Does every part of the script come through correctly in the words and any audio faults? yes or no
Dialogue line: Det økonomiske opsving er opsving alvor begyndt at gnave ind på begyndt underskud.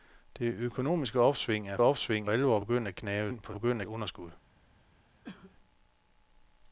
no